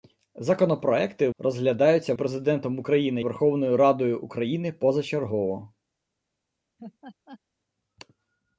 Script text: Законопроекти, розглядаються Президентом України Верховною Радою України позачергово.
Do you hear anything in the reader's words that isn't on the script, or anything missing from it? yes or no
no